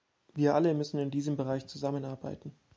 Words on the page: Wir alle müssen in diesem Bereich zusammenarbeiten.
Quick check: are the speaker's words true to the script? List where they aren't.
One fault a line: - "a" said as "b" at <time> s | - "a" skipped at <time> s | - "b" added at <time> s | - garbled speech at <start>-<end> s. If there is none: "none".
none